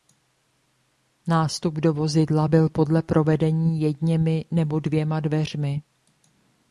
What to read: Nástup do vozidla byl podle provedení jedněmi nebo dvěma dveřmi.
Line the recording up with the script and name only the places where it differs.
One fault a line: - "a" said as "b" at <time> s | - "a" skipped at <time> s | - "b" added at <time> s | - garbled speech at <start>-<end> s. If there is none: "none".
none